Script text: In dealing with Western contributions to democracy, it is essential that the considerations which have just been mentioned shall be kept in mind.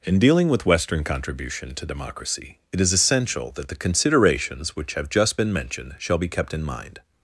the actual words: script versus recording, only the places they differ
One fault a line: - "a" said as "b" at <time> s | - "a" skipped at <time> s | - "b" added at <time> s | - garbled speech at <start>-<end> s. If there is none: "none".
- "contributions" said as "contribution" at 1.0 s